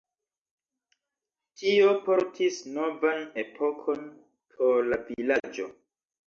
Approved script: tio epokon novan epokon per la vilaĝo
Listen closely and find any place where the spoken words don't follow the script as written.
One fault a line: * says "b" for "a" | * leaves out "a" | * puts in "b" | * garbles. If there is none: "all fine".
* says "portis" for "epokon"
* says "por" for "per"